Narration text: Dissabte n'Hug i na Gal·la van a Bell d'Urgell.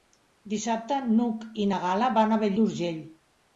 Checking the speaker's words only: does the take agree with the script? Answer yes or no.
yes